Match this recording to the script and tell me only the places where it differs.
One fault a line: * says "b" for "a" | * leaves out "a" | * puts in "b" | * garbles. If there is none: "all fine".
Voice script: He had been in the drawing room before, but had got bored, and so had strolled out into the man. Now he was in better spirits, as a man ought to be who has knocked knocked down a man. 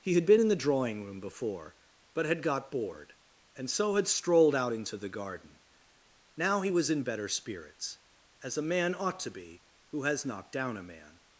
* says "garden" for "man"
* leaves out "knocked"